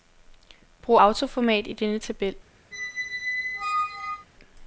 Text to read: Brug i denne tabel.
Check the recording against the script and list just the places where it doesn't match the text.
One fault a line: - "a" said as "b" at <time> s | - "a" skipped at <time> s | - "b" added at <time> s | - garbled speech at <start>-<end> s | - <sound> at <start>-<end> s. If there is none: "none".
- "autoformat" added at 0.9 s
- squeak at 2.7-4.3 s